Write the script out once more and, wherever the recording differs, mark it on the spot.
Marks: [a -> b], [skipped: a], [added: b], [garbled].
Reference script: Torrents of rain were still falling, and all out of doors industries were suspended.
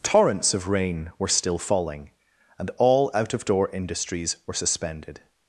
Torrents of rain were still falling, and all out of [doors -> door] industries were suspended.